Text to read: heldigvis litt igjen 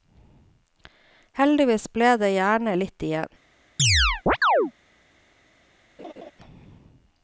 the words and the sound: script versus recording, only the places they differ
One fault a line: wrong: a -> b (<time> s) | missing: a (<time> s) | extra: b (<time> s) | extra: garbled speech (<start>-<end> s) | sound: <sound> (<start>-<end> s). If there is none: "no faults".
extra: ble det gjerne (1.9 s)
sound: chirp (3.8-4.7 s)
sound: laugh (6.0-6.3 s)